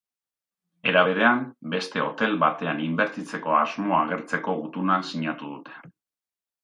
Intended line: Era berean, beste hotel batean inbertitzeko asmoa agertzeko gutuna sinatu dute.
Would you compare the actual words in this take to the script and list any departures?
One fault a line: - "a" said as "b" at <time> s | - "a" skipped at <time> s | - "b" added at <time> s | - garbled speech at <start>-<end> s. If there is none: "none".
none